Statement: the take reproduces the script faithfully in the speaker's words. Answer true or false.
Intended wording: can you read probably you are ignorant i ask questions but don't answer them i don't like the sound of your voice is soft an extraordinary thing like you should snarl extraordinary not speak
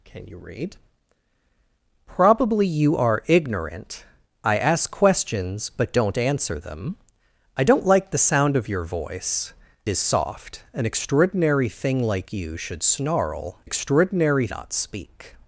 true